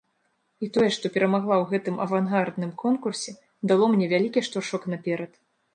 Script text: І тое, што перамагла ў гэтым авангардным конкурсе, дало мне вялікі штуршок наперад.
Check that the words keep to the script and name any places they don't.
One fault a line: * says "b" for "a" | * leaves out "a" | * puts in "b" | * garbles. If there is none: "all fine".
all fine